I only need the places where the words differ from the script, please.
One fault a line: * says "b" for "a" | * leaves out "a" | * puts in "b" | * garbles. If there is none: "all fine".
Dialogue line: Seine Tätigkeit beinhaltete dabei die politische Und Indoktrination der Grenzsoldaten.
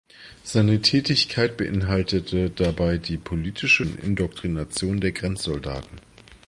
all fine